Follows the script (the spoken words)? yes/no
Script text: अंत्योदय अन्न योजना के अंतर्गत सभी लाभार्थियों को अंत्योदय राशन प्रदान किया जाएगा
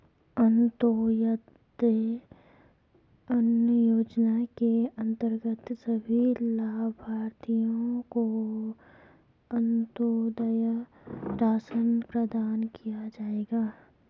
yes